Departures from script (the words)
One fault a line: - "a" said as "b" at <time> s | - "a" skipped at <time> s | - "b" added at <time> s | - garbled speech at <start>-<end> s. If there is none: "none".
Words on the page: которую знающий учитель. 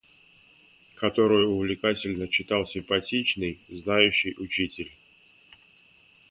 - "увлекательно читал симпатичный" added at 1.5 s